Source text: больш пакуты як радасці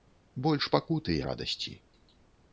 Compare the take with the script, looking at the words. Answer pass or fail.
fail